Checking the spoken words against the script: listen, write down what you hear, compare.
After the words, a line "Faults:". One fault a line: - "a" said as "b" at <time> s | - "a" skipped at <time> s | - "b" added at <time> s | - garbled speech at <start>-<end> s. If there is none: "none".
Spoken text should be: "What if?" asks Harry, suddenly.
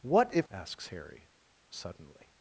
"What if?" asks Harry, suddenly.
Faults:
none